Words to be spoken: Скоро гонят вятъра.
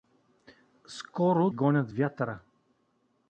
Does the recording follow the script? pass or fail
pass